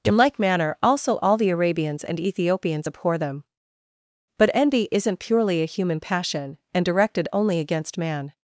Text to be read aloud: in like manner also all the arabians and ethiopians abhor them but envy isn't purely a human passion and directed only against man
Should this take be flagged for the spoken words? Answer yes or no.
no